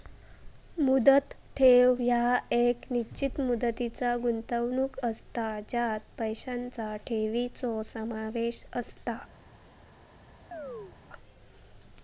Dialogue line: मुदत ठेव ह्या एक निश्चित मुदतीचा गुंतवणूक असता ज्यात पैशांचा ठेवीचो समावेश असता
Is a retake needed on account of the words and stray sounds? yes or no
yes